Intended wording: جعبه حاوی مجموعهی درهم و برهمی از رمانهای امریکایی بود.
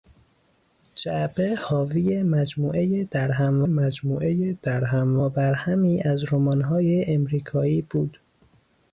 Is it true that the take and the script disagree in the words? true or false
true